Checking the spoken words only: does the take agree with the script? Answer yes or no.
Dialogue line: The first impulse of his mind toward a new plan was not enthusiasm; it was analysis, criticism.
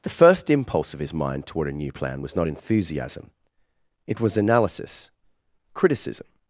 yes